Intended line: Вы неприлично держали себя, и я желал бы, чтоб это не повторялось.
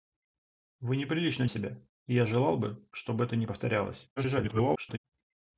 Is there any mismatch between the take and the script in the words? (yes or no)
yes